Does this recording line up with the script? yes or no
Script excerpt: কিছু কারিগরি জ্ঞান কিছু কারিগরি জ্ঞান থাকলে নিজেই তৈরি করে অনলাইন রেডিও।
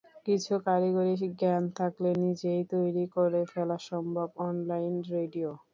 no